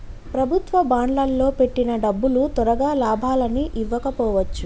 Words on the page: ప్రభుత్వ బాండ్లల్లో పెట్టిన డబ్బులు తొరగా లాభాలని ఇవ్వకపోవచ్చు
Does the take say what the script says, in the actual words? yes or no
yes